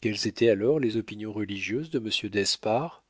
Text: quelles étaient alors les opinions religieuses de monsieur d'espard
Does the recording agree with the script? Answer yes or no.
yes